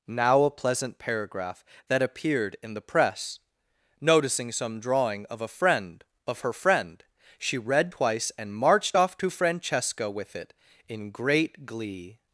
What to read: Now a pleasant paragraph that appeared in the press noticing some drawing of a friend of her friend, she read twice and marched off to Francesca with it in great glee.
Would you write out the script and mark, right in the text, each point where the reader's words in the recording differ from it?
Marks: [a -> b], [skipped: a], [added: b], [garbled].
Now a pleasant paragraph that appeared in the press noticing some drawing of a friend of her friend, she read twice and marched off to Francesca with it in great glee.